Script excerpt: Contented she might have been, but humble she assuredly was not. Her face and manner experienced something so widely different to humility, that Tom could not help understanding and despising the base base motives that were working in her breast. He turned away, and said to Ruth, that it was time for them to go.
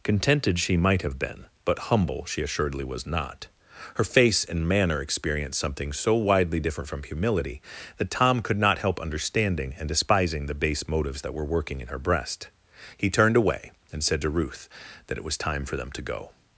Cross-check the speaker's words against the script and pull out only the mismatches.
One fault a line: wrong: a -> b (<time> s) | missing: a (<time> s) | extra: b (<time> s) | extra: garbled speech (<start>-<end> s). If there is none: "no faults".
wrong: to -> from (6.9 s)
missing: base (10.9 s)